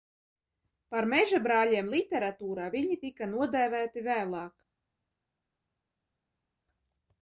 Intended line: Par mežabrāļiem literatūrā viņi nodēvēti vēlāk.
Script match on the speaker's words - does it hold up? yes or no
no